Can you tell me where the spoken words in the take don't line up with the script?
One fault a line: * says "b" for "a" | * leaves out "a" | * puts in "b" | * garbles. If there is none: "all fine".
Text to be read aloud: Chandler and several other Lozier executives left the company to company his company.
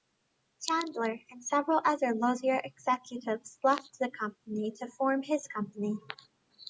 * says "form" for "company"